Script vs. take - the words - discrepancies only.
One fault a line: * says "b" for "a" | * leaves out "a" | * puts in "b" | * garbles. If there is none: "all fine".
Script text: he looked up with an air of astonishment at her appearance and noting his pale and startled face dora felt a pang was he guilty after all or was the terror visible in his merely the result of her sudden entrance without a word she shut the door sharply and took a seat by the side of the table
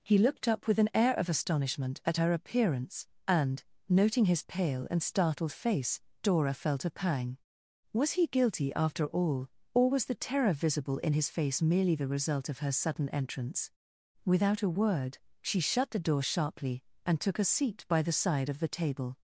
* puts in "face"